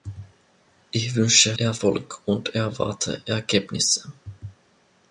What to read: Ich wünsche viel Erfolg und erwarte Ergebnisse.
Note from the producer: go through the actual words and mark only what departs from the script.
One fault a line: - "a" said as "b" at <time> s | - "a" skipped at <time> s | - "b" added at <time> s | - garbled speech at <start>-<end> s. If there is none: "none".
- "viel" skipped at 1.6 s